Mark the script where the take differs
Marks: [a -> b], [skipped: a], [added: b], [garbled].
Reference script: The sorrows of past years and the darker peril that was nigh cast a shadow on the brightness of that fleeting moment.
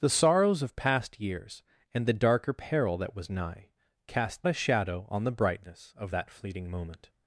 The sorrows of past years and the darker peril that was nigh cast a shadow on the brightness of that fleeting moment.